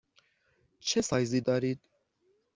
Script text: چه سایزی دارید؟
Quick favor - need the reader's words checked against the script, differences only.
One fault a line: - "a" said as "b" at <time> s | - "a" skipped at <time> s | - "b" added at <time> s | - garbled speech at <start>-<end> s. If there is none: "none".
none